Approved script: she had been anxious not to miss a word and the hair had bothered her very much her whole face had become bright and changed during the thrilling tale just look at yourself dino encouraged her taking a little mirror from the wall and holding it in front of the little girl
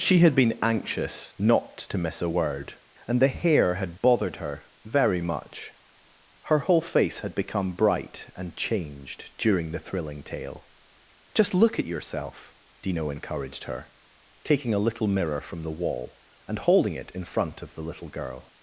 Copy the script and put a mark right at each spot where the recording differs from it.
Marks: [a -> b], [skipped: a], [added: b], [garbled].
she had been anxious not to miss a word and the hair had bothered her very much her whole face had become bright and changed during the thrilling tale just look at yourself dino encouraged her taking a little mirror from the wall and holding it in front of the little girl